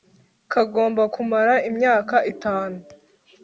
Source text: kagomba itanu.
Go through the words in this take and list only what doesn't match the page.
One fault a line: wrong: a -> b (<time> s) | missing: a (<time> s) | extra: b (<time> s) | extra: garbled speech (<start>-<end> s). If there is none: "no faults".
extra: kumara imyaka (1.1 s)